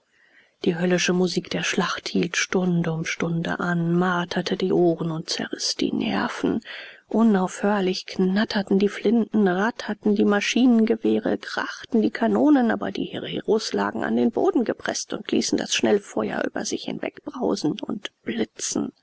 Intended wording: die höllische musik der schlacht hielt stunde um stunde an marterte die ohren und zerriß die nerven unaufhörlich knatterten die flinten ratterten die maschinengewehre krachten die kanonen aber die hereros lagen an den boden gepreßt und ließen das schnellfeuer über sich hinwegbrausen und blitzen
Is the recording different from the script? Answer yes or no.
no